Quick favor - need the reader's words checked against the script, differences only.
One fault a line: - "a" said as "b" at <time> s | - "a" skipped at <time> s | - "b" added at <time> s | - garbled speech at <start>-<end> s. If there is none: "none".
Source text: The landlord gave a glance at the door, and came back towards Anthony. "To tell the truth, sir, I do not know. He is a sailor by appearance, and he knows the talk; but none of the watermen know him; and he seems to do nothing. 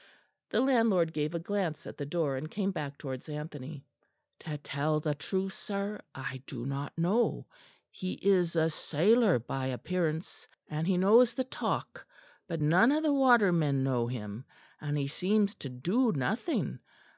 none